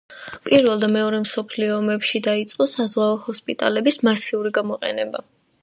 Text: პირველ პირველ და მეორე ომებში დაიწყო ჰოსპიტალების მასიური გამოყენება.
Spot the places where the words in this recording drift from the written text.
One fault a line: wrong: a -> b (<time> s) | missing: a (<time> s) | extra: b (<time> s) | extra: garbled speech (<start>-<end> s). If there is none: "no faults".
missing: პირველ (0.8 s)
extra: მსოფლიო (1.2 s)
extra: საზღვაო (2.8 s)